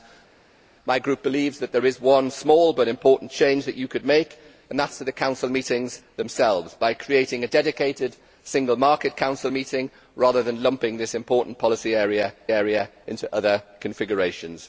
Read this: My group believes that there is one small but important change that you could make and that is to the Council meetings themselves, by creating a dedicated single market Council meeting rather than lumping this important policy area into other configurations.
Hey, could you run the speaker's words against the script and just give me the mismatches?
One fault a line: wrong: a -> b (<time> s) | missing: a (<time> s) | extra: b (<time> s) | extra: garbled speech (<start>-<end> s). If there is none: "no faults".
extra: area (12.5 s)